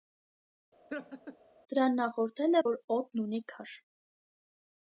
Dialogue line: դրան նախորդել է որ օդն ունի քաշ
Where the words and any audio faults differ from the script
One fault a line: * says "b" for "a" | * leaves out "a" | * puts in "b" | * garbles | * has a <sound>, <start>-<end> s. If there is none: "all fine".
* has a laugh, 0.9-1.4 s